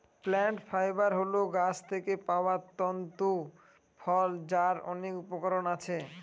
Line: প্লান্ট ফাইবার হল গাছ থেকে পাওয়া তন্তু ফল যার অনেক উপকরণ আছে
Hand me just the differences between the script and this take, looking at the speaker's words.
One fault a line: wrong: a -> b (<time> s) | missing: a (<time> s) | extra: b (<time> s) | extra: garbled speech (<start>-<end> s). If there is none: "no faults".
no faults